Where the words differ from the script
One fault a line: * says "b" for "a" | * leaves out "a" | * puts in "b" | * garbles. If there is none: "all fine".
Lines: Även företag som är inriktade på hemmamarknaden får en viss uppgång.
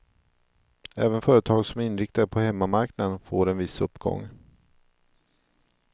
all fine